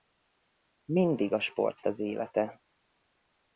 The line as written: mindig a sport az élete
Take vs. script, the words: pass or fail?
pass